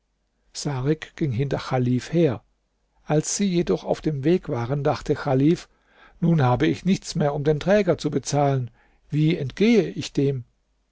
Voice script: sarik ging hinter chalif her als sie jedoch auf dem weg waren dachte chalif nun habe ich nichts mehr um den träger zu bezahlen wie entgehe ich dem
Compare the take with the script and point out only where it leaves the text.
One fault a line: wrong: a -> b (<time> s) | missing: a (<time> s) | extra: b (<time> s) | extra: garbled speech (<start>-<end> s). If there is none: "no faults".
no faults